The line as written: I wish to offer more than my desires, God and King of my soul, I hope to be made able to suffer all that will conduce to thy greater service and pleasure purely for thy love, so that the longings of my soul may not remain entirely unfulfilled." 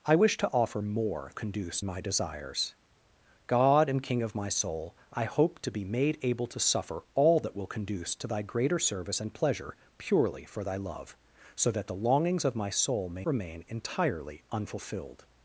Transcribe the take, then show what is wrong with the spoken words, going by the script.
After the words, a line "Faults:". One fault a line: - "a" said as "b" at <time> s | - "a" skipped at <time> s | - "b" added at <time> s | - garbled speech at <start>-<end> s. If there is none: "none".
I wish to offer more conduce my desires, God and King of my soul, I hope to be made able to suffer all that will conduce to thy greater service and pleasure purely for thy love, so that the longings of my soul may remain entirely unfulfilled."
Faults:
- "than" said as "conduce" at 1.3 s
- "not" skipped at 13.3 s